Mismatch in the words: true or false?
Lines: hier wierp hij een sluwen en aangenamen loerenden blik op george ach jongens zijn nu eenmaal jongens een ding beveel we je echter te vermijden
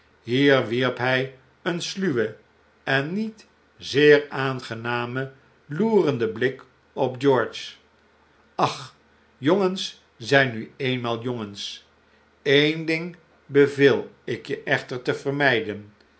true